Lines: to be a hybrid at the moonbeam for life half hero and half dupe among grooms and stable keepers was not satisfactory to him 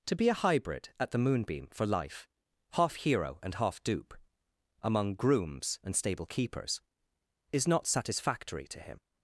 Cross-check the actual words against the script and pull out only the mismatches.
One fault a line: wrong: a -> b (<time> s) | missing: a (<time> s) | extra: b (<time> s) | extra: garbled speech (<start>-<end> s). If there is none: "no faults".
wrong: was -> is (7.5 s)